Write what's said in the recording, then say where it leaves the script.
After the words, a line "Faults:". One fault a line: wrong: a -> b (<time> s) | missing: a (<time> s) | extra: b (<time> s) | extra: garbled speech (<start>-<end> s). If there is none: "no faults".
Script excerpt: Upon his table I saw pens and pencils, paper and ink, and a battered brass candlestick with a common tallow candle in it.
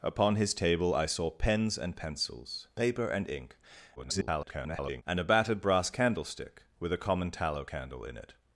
Upon his table I saw pens and pencils, paper and ink, [garbled] and a battered brass candlestick with a common tallow candle in it.
Faults:
extra: garbled speech (4.0-5.0 s)